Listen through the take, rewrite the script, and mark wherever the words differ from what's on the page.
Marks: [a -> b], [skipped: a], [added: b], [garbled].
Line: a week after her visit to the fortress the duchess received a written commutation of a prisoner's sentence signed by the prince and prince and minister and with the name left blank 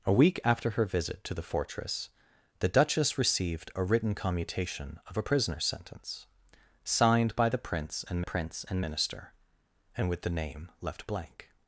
a week after her visit to the fortress the duchess received a written commutation of a prisoner's sentence signed by the prince and prince and minister and with the name left blank